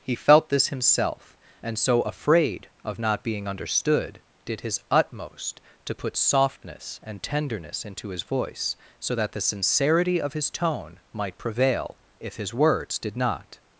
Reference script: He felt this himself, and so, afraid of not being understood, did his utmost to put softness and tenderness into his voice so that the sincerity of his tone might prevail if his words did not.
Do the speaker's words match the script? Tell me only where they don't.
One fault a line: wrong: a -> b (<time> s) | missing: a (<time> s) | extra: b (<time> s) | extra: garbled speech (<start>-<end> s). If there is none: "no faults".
no faults